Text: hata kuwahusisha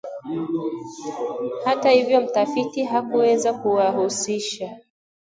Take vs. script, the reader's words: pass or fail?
fail